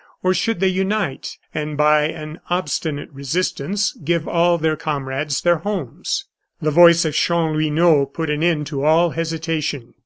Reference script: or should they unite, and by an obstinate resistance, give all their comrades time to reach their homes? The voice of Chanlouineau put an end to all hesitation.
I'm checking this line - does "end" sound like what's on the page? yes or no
yes